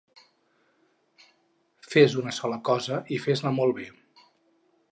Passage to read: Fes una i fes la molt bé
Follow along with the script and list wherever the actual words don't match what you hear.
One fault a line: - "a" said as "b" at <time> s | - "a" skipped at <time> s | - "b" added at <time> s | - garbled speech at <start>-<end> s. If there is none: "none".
- "sola cosa" added at 2.4 s